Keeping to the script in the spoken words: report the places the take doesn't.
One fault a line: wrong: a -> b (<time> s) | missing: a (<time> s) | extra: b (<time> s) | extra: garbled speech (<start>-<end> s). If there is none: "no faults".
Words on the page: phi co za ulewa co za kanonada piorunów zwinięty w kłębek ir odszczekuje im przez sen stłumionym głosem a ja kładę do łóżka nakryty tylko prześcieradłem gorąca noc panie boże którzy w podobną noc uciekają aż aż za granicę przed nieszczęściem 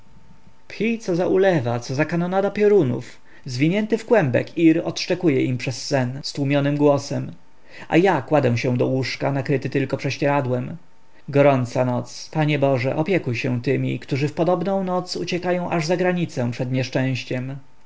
extra: się (8.6 s)
extra: opiekuj się tymi (12.9 s)
missing: aż (15.8 s)